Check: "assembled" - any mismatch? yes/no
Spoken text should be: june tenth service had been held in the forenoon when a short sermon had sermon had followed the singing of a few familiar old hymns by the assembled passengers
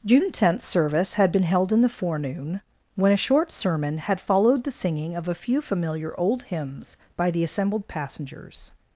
no